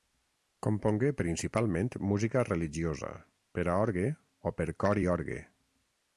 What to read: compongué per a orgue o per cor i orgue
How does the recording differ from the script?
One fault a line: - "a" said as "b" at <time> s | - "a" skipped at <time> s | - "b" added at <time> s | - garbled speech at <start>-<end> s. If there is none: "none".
- "principalment música religiosa" added at 1.2 s